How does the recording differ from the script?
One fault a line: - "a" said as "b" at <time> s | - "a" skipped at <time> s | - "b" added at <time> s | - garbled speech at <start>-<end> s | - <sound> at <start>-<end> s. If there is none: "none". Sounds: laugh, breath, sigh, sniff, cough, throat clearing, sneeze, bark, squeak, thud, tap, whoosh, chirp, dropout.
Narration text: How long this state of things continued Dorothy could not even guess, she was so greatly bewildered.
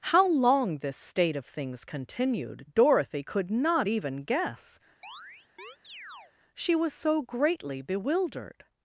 - chirp at 5.0-6.3 s